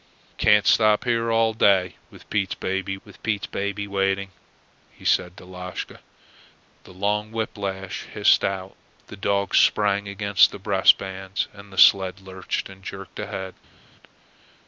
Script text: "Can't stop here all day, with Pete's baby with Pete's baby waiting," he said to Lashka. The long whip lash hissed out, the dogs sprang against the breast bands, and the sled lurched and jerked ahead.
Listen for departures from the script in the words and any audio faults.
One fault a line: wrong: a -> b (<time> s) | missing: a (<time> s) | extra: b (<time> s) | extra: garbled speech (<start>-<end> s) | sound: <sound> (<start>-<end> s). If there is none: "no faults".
no faults